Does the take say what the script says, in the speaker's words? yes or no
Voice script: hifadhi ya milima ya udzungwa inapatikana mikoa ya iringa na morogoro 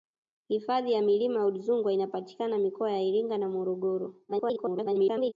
no